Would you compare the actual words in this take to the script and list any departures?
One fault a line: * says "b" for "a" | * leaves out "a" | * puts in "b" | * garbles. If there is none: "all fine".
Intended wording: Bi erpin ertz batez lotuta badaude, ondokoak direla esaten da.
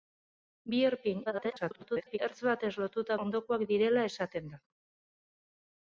* garbles
* leaves out "badaude"